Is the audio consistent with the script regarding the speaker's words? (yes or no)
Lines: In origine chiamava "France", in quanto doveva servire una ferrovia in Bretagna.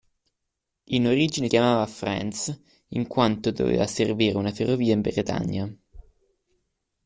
yes